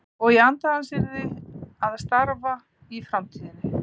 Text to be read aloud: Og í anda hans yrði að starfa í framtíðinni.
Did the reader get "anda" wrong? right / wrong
right